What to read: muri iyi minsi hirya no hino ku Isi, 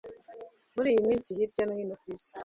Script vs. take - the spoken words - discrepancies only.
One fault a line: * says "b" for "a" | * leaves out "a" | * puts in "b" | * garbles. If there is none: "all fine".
all fine